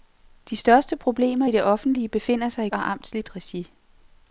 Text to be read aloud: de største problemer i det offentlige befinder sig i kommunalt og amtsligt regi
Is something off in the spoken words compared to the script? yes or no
yes